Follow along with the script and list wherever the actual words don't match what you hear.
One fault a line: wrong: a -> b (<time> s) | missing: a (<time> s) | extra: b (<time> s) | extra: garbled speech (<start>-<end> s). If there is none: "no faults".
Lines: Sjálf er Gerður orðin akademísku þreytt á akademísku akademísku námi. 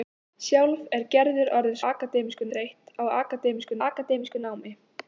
no faults